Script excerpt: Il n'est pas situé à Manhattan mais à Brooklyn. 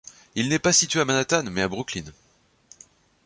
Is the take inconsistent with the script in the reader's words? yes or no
no